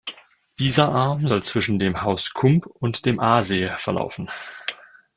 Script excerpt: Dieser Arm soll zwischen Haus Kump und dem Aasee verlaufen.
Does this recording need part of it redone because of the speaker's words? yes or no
yes